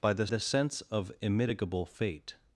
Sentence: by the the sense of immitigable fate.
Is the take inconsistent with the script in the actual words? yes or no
no